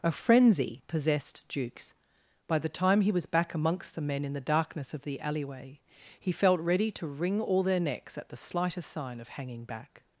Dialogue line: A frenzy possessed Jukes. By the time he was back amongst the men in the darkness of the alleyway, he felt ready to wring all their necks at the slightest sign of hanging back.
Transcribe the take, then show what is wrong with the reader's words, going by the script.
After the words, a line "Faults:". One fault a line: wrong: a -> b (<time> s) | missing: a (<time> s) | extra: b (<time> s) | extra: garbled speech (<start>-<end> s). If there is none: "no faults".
A frenzy possessed Jukes. By the time he was back amongst the men in the darkness of the alleyway, he felt ready to wring all their necks at the slightest sign of hanging back.
Faults:
no faults